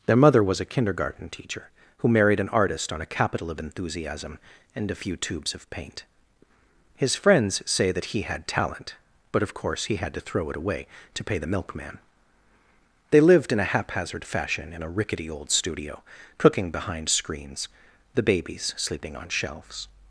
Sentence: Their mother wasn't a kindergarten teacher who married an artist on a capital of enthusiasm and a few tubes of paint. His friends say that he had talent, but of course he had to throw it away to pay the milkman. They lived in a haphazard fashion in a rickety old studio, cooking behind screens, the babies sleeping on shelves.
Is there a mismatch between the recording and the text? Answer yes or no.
yes